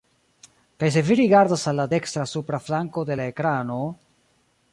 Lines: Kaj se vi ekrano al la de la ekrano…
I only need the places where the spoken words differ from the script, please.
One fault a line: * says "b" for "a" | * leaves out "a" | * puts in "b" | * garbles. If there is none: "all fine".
* says "rigardas" for "ekrano"
* puts in "dekstra supra flanko"